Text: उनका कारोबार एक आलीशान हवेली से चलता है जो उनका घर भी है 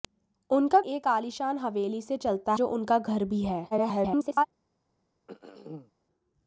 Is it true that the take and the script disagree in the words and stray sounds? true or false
true